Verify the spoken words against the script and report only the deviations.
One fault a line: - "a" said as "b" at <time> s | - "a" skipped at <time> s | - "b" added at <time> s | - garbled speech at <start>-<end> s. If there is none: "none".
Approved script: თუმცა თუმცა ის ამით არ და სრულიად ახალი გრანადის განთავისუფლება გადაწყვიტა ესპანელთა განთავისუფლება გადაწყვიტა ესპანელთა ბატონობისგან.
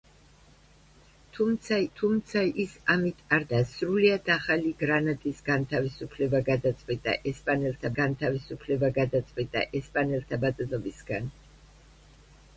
none